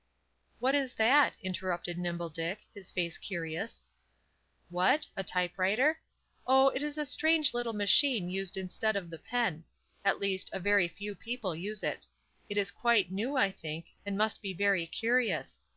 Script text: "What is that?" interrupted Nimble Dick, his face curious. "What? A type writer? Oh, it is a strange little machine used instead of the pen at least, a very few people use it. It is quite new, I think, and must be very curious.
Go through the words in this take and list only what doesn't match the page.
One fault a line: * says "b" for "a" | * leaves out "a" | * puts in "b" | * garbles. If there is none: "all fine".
all fine